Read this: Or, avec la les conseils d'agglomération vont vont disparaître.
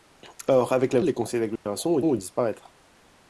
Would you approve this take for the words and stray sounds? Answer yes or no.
no